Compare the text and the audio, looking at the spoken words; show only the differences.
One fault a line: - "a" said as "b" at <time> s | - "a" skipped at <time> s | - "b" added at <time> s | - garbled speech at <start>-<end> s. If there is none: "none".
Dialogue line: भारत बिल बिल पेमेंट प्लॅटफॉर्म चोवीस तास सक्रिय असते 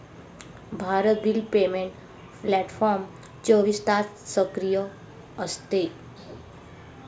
- "बिल" skipped at 1.4 s